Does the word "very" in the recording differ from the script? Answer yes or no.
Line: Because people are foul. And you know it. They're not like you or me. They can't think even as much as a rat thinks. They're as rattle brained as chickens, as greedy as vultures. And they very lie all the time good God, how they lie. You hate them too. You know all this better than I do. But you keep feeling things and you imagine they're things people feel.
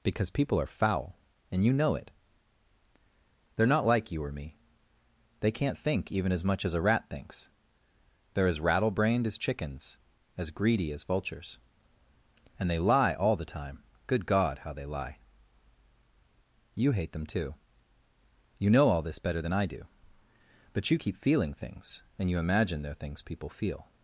yes